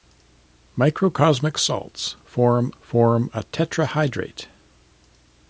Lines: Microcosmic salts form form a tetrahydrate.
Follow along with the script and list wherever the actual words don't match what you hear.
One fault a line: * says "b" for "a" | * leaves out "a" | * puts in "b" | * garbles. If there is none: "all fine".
all fine